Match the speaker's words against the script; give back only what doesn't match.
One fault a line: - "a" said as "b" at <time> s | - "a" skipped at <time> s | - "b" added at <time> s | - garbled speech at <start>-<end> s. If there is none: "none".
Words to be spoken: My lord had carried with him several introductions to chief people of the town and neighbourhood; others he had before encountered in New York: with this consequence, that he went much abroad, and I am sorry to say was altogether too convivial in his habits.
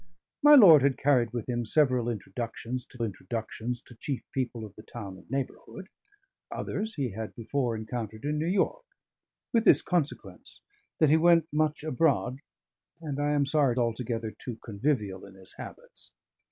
- "introductions to" added at 3.0 s
- "to say was" skipped at 13.7 s